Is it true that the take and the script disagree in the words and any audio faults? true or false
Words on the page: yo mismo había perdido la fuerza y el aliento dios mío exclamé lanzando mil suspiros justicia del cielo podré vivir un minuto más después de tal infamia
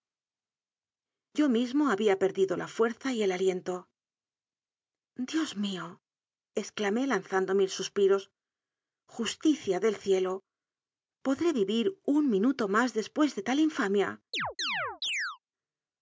true